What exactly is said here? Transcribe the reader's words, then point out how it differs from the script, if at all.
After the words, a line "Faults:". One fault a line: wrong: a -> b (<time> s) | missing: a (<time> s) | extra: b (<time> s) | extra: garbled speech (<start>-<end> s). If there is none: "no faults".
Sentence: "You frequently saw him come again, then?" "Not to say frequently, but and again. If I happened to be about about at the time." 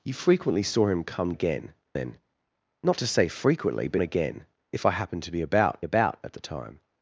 "You frequently saw him come again, then?" "Not to say frequently, but and again. If I happened to be about about at the time."
Faults:
no faults